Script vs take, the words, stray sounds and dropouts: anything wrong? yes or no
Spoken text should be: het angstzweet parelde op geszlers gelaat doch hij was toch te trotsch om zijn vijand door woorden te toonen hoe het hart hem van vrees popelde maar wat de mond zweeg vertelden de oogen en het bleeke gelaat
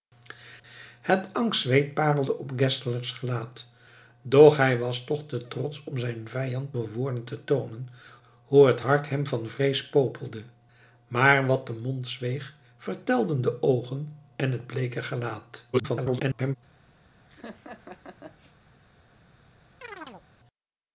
yes